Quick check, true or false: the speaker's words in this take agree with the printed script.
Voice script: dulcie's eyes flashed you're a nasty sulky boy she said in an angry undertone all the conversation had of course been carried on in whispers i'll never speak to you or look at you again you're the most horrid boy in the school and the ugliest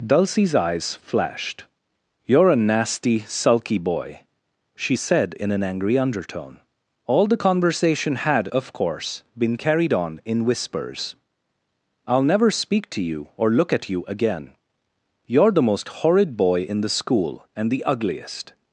true